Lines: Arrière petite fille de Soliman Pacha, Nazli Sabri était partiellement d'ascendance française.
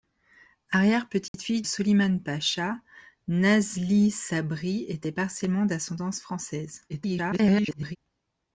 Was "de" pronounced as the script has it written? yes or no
no